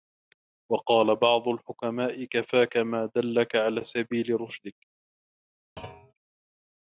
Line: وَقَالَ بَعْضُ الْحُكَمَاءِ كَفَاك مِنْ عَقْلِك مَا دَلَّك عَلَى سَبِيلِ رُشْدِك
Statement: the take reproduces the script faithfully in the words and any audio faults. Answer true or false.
false